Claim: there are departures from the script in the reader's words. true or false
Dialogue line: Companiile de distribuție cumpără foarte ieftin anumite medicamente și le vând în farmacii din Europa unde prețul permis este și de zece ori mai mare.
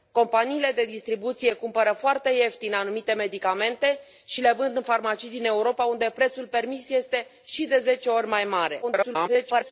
true